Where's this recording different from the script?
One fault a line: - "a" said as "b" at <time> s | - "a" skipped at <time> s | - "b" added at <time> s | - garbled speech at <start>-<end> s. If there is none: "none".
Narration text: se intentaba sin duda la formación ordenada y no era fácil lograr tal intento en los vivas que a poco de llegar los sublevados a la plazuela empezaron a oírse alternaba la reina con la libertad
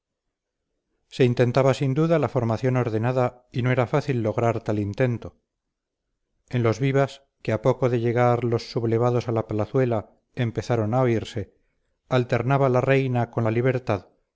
none